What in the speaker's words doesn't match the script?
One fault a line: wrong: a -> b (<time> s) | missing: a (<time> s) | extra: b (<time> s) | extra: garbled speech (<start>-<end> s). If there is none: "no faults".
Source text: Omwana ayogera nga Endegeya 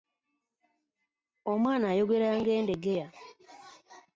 no faults